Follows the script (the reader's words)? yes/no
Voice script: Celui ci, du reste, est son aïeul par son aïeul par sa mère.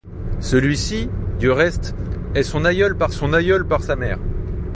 yes